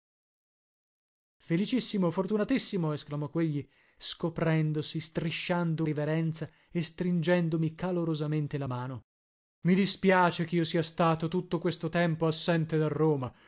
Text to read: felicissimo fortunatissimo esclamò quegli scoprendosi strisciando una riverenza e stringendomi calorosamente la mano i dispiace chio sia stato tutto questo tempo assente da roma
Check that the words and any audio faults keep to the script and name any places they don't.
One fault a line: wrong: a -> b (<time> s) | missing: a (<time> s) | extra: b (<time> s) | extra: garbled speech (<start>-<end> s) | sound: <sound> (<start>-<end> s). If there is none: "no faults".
missing: una (5.8 s)